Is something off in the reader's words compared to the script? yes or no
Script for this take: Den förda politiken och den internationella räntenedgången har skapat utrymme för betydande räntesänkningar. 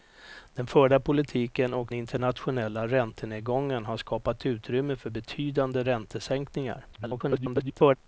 yes